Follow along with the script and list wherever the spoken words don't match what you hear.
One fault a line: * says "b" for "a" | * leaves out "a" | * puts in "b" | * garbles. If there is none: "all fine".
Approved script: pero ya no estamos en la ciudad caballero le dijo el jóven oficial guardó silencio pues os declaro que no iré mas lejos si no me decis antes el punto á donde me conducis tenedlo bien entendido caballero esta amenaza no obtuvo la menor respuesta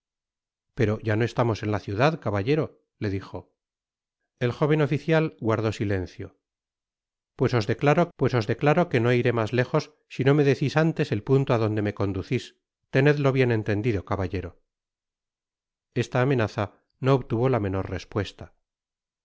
* puts in "pues os declaro"